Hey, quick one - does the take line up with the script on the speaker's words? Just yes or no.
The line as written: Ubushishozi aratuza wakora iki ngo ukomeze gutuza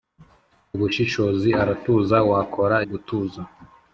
no